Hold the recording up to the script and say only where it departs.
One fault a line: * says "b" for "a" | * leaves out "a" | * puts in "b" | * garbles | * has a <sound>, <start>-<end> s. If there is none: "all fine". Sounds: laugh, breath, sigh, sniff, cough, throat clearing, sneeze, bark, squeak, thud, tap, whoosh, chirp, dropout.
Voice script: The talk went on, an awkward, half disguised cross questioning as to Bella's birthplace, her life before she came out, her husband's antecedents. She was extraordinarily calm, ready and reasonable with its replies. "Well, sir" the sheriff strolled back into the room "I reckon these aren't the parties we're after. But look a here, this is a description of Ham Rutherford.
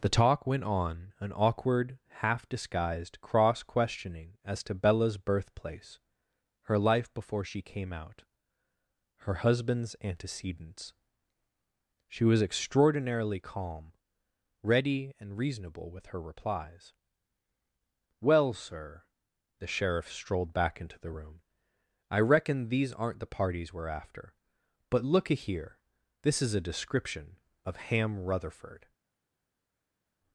* says "her" for "its"